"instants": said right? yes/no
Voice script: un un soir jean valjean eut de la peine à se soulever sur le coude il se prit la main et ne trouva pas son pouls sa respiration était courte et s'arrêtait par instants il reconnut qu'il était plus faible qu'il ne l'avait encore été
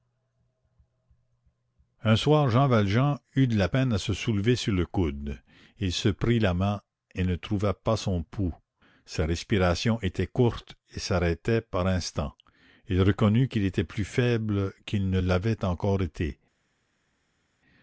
yes